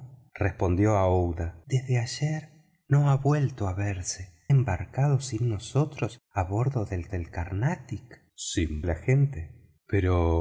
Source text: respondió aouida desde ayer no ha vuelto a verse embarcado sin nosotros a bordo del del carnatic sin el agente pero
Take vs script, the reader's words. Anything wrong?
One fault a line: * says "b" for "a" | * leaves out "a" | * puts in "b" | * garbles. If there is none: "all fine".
all fine